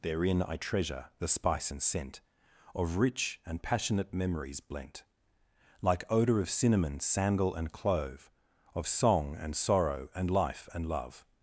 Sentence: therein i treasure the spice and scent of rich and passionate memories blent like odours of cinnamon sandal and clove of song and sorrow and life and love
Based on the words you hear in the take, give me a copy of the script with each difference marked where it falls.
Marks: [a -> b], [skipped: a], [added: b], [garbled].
therein i treasure the spice and scent of rich and passionate memories blent like [odours -> odour] of cinnamon sandal and clove of song and sorrow and life and love